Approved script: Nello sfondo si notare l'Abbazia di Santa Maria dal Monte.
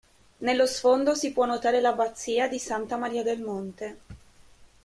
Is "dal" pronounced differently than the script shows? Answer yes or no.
yes